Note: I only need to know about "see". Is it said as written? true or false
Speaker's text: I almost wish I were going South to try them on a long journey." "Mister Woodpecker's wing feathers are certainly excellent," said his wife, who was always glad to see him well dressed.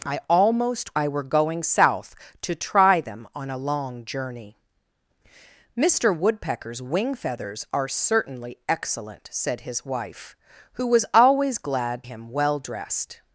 false